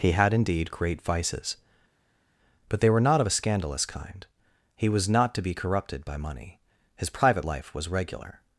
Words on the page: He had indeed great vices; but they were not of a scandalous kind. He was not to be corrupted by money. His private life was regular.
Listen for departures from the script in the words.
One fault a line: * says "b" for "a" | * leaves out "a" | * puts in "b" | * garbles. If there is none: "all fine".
all fine